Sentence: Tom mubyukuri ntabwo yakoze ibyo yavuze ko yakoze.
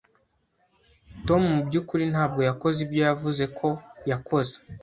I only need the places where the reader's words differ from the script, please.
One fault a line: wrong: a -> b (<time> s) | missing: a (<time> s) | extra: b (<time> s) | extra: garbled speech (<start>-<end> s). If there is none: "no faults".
no faults